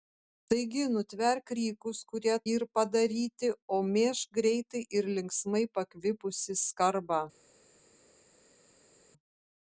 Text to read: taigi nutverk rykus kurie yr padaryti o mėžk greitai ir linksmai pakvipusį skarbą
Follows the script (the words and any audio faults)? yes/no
yes